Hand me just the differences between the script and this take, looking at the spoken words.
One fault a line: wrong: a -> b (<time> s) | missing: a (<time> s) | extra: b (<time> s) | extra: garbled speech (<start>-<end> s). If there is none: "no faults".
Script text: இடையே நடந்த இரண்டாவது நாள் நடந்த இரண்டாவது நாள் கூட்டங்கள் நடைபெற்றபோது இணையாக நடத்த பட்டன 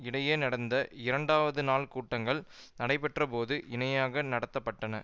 missing: நடந்த இரண்டாவது நாள் (1.9 s)